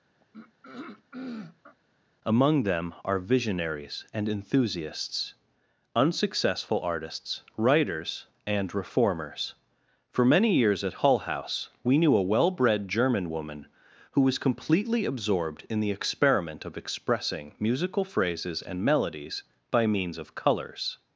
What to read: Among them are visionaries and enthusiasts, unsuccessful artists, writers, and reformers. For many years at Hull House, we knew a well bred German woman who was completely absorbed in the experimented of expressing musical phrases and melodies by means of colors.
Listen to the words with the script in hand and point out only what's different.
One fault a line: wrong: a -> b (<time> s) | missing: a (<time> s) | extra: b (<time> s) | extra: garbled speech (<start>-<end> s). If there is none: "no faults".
wrong: experimented -> experiment (15.9 s)